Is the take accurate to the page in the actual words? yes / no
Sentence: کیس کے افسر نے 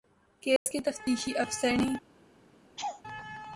no